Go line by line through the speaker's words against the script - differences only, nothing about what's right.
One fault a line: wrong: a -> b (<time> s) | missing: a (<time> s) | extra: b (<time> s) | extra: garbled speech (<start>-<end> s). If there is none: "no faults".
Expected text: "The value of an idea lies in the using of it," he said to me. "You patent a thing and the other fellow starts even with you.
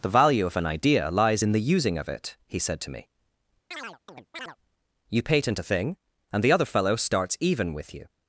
no faults